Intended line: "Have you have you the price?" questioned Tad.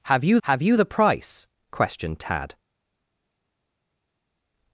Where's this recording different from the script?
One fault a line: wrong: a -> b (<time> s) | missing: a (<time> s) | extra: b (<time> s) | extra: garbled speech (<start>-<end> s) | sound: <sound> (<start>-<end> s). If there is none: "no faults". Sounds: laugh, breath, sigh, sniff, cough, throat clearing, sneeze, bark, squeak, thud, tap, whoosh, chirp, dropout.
no faults